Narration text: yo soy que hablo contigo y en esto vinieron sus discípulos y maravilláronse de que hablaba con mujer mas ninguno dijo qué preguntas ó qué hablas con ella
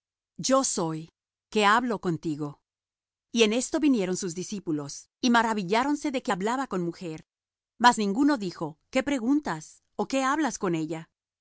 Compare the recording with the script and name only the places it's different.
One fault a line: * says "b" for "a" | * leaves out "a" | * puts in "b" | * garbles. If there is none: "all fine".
all fine